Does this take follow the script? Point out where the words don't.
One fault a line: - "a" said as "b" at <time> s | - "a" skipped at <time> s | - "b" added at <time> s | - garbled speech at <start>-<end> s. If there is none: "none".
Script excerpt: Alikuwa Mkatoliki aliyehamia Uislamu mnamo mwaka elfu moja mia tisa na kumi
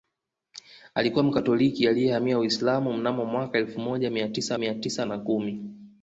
- "mia tisa" added at 4.6 s